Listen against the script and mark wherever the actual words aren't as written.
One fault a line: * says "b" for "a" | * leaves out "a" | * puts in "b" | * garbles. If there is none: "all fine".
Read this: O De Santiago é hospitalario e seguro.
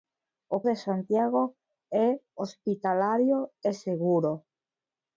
all fine